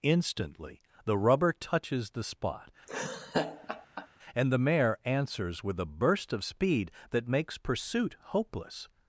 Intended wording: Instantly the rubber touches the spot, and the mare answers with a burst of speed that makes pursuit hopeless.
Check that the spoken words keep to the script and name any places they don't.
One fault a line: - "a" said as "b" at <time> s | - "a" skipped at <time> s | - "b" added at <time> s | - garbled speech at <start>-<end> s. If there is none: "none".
none